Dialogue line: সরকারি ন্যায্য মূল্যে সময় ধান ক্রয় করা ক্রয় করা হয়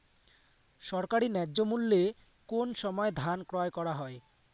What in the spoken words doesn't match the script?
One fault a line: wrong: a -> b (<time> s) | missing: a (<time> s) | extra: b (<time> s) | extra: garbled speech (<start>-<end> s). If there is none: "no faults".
extra: কোন (2.5 s)
missing: ক্রয় করা (3.9 s)